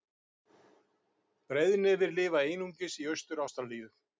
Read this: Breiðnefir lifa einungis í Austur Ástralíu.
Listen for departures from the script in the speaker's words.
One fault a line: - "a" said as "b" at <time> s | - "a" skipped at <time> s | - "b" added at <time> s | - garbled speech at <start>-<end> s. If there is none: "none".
none